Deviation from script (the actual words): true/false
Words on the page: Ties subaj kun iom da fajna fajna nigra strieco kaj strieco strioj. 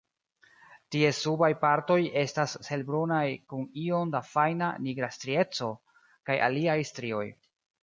true